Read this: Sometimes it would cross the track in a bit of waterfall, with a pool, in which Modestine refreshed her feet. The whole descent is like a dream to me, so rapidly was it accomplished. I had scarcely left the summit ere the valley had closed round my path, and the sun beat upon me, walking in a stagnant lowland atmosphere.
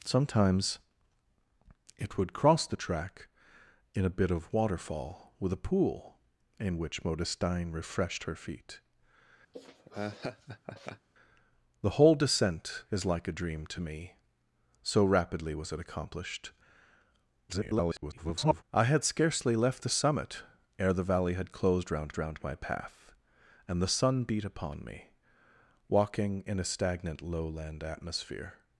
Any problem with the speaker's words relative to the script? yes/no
yes